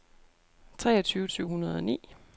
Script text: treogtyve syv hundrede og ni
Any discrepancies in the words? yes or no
no